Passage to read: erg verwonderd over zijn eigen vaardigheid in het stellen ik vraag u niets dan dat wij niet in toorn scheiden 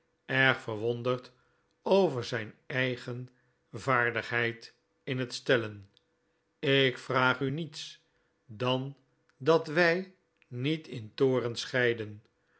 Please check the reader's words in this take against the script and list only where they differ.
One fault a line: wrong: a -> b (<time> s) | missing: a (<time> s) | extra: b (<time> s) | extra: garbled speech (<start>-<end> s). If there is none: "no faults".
no faults